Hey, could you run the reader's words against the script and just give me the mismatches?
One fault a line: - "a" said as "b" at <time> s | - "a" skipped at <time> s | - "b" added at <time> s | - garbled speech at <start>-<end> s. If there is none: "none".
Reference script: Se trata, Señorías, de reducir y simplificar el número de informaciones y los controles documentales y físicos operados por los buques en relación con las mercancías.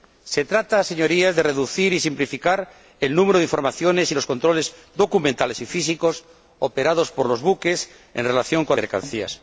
- "las" skipped at 8.8 s